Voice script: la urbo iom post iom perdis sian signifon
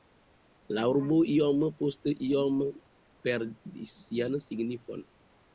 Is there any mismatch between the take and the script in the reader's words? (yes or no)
no